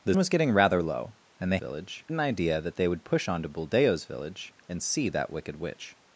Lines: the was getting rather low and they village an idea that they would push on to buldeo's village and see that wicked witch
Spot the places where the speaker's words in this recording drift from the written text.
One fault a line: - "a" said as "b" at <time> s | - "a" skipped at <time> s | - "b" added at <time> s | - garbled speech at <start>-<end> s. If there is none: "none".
none